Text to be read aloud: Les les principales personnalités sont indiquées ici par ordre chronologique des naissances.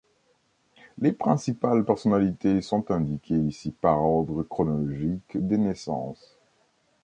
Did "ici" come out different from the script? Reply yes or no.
no